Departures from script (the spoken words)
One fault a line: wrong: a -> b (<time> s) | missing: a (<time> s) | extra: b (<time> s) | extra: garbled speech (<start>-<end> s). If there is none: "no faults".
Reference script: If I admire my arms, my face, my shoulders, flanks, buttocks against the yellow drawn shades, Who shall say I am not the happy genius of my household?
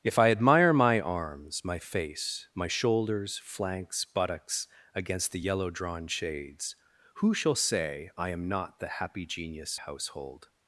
missing: of my (9.8 s)